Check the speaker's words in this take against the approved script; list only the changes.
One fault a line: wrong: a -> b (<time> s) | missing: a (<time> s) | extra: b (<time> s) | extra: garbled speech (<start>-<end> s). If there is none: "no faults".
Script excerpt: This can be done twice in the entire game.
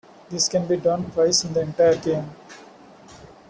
no faults